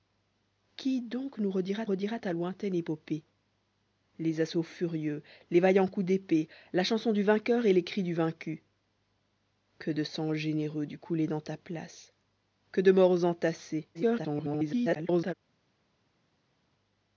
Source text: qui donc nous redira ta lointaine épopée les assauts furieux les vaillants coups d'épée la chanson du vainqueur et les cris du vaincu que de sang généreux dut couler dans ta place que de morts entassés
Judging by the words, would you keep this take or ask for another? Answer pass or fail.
fail